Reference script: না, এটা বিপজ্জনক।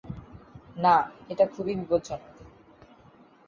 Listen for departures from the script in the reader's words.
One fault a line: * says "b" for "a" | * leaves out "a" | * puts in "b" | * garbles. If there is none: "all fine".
* puts in "খুবই"